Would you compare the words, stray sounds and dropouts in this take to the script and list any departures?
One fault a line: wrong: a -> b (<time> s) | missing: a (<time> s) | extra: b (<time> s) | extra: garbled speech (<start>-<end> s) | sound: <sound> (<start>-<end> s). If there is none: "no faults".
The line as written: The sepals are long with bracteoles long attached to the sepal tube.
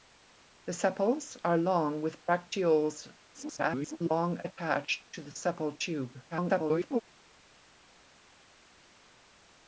extra: garbled speech (3.3-4.0 s)
extra: garbled speech (6.3-7.0 s)